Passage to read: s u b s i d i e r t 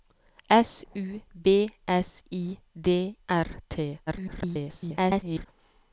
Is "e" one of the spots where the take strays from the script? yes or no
yes